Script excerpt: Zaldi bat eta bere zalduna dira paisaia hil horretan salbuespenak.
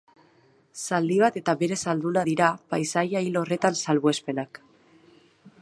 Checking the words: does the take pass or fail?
pass